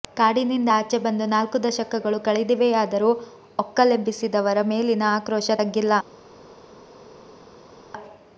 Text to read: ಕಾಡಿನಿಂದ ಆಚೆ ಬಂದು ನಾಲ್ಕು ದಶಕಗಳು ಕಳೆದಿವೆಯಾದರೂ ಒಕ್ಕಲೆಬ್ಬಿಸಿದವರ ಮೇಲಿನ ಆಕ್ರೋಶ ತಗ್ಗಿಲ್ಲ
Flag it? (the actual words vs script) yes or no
no